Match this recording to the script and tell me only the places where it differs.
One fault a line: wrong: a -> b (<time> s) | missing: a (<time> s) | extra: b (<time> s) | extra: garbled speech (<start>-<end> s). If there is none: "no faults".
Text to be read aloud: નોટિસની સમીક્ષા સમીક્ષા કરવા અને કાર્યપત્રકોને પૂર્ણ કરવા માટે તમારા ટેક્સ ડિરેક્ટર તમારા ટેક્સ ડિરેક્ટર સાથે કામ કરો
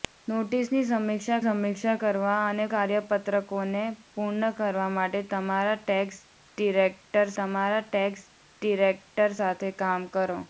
no faults